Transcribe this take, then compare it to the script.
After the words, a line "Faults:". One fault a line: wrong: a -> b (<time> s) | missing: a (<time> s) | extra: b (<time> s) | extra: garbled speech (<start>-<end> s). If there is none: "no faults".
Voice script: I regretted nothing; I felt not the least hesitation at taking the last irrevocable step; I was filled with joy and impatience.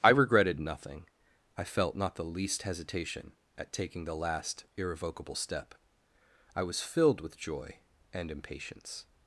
I regretted nothing; I felt not the least hesitation at taking the last irrevocable step; I was filled with joy and impatience.
Faults:
no faults